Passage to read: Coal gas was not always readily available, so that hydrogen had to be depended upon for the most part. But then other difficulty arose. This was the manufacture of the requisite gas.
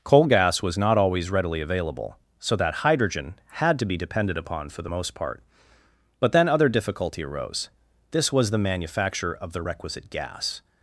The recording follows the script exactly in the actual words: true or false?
true